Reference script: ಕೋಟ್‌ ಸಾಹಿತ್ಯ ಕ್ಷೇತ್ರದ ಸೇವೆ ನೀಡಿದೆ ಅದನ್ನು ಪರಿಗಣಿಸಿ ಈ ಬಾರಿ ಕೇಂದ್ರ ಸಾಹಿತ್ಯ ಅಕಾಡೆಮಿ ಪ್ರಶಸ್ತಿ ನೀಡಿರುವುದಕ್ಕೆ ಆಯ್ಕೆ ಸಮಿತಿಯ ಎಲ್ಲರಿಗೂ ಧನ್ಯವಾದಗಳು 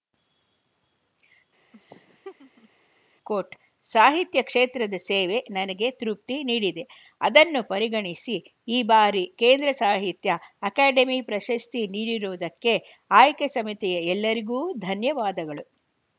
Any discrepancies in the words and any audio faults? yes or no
yes